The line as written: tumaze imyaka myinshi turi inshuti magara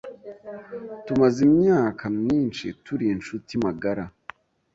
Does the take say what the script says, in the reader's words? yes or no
yes